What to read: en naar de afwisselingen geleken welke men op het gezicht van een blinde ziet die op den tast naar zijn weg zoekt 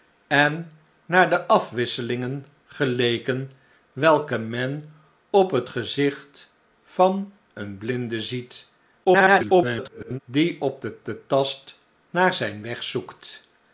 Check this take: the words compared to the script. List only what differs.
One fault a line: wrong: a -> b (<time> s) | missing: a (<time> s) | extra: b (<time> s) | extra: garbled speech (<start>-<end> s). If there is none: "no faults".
extra: garbled speech (9.0-10.2 s)
extra: den (11.1 s)